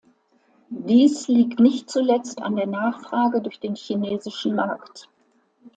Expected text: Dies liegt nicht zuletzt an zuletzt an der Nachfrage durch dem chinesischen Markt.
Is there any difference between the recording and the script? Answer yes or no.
yes